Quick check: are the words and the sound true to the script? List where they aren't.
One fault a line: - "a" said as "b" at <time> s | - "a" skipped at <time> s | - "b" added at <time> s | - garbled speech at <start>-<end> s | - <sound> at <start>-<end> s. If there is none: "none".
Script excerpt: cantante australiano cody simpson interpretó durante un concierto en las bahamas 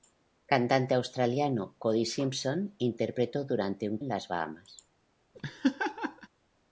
- "concierto" skipped at 4.0 s
- laugh at 5.3-6.3 s